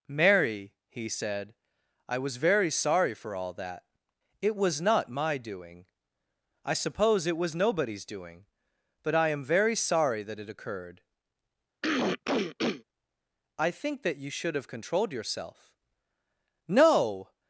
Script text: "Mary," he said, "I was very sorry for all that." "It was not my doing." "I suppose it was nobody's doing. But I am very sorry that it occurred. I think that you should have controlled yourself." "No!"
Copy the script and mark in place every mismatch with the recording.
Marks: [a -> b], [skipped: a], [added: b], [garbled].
"Mary," he said, "I was very sorry for all that." "It was not my doing." "I suppose it was nobody's doing. But I am very sorry that it occurred. I think that you should have controlled yourself." "No!"